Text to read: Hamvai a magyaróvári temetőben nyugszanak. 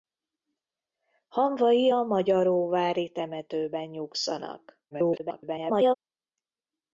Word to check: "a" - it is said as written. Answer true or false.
true